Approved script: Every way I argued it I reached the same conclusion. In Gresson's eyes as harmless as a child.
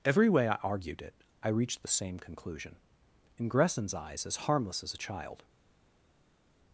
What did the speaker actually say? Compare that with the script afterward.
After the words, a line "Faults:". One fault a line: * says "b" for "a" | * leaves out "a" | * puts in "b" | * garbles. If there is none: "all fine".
Every way I argued it I reached the same conclusion. In Gresson's eyes as harmless as a child.
Faults:
all fine